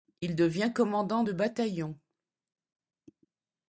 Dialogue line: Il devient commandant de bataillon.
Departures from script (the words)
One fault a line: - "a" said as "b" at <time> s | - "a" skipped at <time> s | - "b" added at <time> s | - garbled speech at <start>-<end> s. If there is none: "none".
none